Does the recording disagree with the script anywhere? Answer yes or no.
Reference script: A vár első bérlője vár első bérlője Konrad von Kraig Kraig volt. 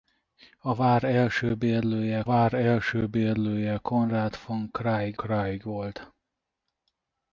no